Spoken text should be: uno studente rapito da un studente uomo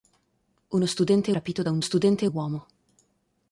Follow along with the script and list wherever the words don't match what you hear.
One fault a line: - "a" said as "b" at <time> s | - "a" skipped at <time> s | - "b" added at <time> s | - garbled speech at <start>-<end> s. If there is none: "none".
none